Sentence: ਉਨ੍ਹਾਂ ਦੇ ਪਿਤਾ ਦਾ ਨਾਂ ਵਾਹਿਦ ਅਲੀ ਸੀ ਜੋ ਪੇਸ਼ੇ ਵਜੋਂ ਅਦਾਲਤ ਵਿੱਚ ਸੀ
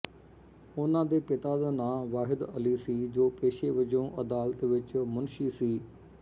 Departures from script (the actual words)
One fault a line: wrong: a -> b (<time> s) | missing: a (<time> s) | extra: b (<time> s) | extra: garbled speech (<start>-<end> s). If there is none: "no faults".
extra: ਮੁਨਸ਼ੀ (5.0 s)